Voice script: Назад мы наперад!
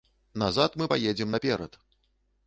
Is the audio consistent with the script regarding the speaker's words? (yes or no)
no